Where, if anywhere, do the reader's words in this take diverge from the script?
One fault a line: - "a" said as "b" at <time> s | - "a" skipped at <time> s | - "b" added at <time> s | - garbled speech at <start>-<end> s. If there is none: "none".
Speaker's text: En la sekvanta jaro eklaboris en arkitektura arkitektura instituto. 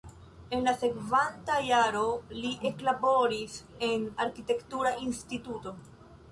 - "li" added at 2.4 s
- "arkitektura" skipped at 5.0 s